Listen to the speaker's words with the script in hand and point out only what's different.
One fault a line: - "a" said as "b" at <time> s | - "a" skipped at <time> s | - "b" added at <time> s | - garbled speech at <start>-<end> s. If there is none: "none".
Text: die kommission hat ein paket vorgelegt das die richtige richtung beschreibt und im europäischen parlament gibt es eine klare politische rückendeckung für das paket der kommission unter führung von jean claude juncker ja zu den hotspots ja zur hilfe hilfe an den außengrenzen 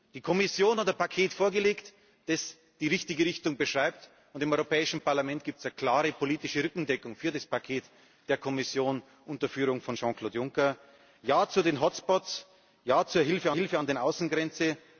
none